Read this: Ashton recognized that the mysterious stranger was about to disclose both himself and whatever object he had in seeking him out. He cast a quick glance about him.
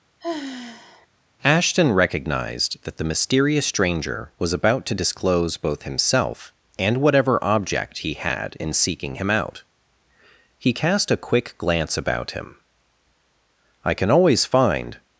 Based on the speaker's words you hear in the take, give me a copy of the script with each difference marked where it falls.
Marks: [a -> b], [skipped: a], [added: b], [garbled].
Ashton recognized that the mysterious stranger was about to disclose both himself and whatever object he had in seeking him out. He cast a quick glance about him. [added: I can always find]